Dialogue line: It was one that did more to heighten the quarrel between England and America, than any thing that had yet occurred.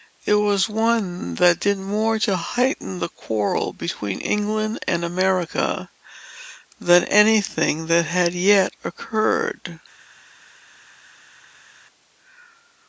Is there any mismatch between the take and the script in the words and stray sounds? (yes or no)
no